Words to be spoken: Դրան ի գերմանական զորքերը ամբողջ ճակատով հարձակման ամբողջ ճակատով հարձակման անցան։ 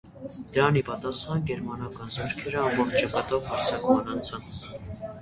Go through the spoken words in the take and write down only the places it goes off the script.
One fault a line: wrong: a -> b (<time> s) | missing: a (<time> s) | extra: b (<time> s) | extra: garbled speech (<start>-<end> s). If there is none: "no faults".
extra: պատասխան (0.9 s)
missing: ամբողջ ճակատով հարձակման (4.1 s)